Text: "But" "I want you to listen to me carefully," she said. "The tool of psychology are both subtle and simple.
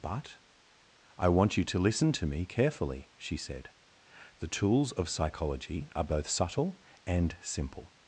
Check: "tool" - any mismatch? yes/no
yes